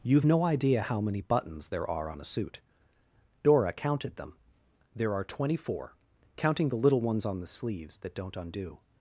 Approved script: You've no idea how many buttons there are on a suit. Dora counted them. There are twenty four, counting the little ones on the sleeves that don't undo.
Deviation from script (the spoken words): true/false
false